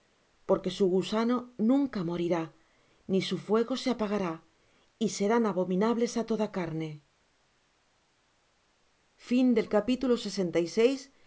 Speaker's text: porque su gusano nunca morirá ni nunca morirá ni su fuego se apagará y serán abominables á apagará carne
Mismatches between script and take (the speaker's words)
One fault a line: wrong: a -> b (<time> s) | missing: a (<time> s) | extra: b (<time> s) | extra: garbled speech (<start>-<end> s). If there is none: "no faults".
missing: nunca morirá ni (3.2 s)
wrong: apagará -> toda (6.3 s)